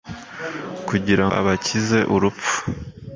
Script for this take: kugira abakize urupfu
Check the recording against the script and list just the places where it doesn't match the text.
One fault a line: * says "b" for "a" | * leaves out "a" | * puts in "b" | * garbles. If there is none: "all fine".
all fine